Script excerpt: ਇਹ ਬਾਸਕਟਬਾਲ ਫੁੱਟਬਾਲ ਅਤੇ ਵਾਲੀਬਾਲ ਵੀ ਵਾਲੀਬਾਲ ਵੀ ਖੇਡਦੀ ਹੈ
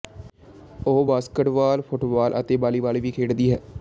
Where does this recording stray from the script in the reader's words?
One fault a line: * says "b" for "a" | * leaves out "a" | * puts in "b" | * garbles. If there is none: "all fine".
* says "ਉਹ" for "ਇਹ"
* leaves out "ਵਾਲੀਬਾਲ ਵੀ"